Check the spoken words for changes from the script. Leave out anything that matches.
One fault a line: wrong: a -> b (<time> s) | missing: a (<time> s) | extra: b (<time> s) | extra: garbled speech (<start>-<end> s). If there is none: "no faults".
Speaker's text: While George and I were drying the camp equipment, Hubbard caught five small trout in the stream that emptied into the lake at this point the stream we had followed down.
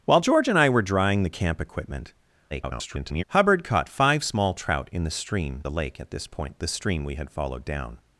extra: garbled speech (2.5-3.2 s)
missing: that emptied into (5.6 s)